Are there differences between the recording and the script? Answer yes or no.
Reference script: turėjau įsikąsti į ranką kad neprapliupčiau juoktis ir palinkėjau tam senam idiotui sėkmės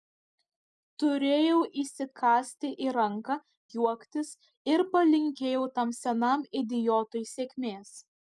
yes